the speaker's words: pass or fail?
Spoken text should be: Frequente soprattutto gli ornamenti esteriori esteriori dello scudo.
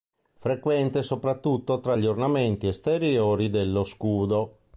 fail